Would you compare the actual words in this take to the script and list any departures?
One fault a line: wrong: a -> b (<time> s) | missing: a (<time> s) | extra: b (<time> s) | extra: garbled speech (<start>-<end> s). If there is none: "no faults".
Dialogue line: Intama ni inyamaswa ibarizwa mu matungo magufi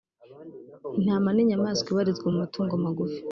no faults